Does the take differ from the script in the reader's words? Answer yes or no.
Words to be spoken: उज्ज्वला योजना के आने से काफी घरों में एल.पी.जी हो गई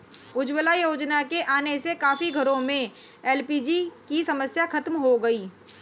yes